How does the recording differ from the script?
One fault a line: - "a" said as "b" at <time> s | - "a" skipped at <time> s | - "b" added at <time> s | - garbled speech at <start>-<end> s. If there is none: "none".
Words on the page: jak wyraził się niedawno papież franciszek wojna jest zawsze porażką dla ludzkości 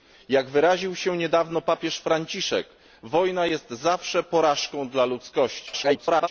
- garbled speech at 5.7-6.3 s